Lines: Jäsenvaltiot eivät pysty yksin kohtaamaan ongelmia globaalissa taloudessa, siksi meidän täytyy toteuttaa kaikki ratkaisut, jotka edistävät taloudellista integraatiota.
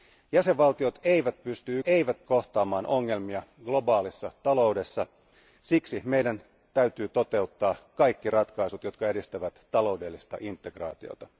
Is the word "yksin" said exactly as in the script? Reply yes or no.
no